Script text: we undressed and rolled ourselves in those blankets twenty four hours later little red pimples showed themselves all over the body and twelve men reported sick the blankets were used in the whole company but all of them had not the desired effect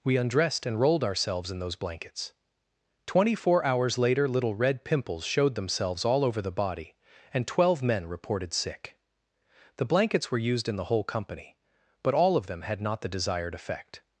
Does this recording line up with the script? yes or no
yes